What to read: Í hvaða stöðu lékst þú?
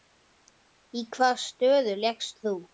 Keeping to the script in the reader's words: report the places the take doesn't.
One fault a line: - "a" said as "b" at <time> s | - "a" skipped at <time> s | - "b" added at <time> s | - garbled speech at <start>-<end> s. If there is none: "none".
none